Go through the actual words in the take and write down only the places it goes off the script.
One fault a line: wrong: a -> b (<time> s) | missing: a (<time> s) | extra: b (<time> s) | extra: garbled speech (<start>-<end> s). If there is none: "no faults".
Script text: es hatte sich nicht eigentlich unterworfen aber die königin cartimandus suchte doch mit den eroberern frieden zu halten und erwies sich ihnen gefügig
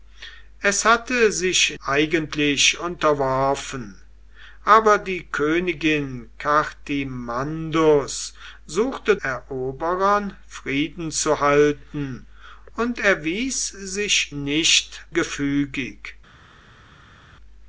missing: nicht (1.8 s)
missing: doch mit den (9.2 s)
wrong: ihnen -> nicht (14.3 s)